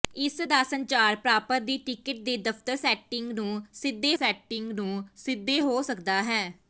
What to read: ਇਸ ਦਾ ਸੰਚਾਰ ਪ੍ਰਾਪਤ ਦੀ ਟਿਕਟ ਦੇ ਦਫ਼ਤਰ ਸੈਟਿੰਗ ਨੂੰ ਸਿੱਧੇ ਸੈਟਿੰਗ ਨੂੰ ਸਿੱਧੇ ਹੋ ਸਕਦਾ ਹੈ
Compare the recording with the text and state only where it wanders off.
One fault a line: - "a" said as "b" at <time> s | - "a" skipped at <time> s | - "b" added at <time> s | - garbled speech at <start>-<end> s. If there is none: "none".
none